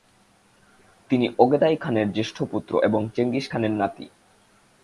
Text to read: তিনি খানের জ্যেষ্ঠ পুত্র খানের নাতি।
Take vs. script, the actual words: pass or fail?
fail